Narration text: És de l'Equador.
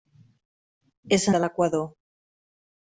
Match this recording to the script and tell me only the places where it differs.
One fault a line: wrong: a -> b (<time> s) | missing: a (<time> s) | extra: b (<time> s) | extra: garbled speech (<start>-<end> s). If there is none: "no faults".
no faults